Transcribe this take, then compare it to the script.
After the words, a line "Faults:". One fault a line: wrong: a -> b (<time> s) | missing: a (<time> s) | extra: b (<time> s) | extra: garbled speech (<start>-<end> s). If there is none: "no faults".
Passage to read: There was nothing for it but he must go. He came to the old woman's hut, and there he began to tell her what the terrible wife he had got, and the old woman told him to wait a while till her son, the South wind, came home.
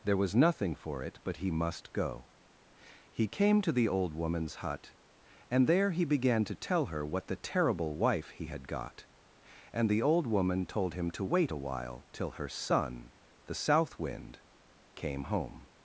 There was nothing for it but he must go. He came to the old woman's hut, and there he began to tell her what the terrible wife he had got, and the old woman told him to wait a while till her son, the South wind, came home.
Faults:
no faults